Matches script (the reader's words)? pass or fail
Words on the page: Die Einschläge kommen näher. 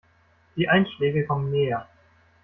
pass